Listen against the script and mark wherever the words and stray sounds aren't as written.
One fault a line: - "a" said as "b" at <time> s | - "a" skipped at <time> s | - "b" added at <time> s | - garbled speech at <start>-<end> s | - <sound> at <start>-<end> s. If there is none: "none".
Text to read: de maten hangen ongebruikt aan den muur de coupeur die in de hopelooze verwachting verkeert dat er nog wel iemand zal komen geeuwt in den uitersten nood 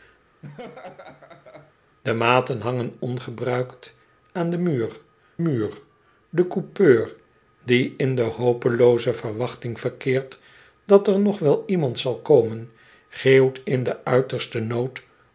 - laugh at 0.4-1.7 s
- "muur" added at 5.4 s